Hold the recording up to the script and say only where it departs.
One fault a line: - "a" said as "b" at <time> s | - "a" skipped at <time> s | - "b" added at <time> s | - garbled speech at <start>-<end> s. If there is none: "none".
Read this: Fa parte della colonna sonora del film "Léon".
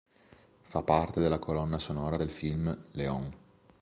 none